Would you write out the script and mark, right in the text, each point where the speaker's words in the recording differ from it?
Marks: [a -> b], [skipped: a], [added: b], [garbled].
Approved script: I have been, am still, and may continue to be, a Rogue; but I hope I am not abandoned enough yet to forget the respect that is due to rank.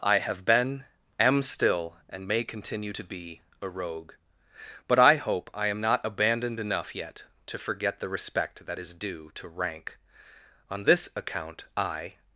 I have been, am still, and may continue to be, a Rogue; but I hope I am not abandoned enough yet to forget the respect that is due to rank. [added: On this account I]